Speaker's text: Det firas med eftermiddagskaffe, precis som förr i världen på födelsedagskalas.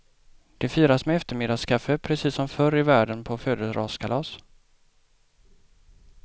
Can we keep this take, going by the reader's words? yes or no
yes